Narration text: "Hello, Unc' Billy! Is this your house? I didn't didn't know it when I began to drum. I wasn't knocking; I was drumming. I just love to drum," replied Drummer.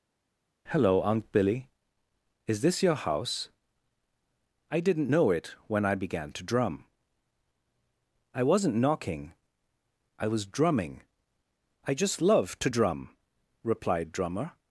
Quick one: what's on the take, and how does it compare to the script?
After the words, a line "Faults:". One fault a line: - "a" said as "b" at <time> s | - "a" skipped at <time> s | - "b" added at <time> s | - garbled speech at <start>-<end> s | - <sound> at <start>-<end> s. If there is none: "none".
"Hello, Unc' Billy! Is this your house? I didn't know it when I began to drum. I wasn't knocking; I was drumming. I just love to drum," replied Drummer.
Faults:
- "didn't" skipped at 5.1 s